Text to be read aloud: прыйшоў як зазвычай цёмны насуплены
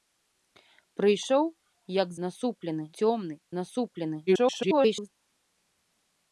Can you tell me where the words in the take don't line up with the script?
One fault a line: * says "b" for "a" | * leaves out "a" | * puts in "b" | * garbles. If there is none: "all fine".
* says "насуплены" for "зазвычай"
* garbles